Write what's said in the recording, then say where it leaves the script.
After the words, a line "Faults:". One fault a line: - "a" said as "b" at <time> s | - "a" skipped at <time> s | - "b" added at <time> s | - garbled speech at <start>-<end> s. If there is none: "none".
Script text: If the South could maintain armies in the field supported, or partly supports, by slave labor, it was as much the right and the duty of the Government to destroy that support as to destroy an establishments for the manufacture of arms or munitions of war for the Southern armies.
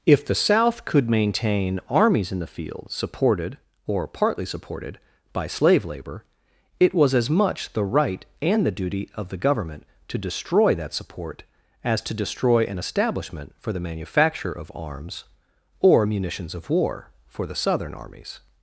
If the South could maintain armies in the field supported, or partly supported, by slave labor, it was as much the right and the duty of the Government to destroy that support as to destroy an establishment for the manufacture of arms or munitions of war for the Southern armies.
Faults:
- "supports" said as "supported" at 4.5 s
- "establishments" said as "establishment" at 12.8 s